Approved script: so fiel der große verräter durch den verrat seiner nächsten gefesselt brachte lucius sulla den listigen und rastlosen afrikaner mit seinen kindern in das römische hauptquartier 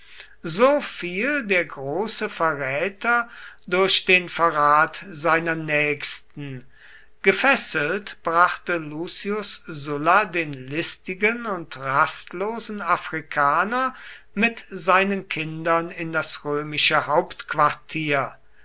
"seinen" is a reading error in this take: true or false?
false